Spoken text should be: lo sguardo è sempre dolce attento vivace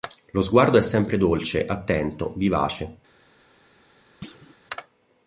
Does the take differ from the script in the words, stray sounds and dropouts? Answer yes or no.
yes